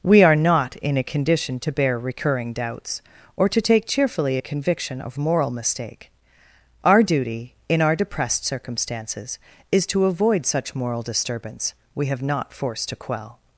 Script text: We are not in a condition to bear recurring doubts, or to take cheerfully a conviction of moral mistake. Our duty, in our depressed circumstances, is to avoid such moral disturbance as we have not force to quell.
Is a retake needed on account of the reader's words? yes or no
yes